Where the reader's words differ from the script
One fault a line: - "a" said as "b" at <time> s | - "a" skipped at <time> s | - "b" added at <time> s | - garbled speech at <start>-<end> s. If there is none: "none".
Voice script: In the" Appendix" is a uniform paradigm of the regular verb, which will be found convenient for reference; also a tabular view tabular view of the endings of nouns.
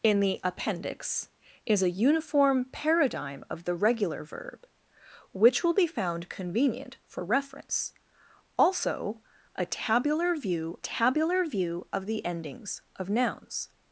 none